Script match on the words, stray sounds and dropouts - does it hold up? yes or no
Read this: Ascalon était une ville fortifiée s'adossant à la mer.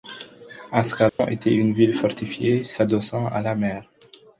no